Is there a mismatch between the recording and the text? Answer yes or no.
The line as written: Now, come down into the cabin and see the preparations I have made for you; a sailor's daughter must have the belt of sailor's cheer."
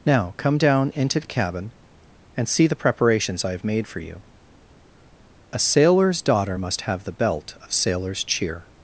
no